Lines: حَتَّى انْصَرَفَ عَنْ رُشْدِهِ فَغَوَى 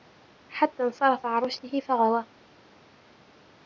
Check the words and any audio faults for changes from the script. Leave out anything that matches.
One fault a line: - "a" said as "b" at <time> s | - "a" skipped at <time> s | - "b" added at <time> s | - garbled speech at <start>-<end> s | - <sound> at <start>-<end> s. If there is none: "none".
none